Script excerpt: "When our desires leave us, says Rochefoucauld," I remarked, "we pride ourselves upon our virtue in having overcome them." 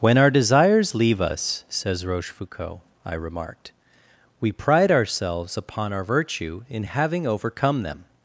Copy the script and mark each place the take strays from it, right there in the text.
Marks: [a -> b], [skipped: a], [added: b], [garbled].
"When our desires leave us, says Rochefoucauld," I remarked, "we pride ourselves upon our virtue in having overcome them."